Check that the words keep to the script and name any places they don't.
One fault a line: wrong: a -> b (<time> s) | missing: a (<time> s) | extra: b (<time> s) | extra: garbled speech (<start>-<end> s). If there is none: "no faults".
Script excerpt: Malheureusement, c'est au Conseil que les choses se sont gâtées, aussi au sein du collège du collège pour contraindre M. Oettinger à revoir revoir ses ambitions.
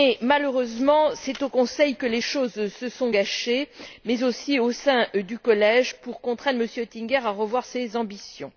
extra: mais (4.0 s)
missing: du collège (6.0 s)
missing: revoir (7.6 s)